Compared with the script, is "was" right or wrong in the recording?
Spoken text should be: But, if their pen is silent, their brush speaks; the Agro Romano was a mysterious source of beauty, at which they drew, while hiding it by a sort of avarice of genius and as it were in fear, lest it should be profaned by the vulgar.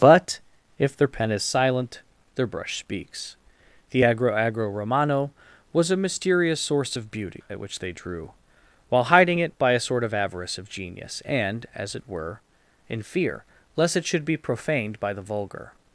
right